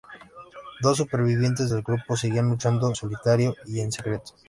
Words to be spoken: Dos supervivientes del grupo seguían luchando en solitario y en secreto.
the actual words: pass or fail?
fail